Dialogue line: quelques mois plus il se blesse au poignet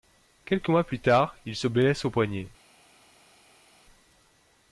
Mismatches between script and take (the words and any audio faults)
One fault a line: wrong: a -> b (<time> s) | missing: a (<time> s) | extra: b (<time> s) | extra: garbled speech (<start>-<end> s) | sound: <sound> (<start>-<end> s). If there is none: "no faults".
extra: tard (1.0 s)